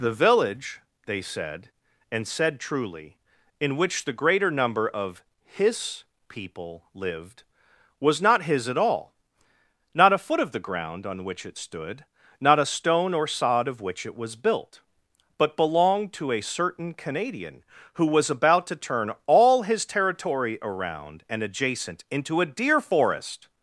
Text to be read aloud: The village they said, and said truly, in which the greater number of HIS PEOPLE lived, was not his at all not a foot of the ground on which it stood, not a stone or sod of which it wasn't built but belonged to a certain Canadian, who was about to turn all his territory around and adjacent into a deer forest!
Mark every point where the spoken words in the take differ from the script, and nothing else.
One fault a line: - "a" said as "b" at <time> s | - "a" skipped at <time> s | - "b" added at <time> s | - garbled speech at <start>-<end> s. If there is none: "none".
- "wasn't" said as "was" at 14.1 s